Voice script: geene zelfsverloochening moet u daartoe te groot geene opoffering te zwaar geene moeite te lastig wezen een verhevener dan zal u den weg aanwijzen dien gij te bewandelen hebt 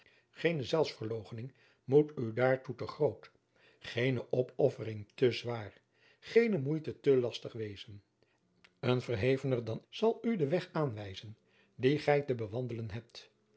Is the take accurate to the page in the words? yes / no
yes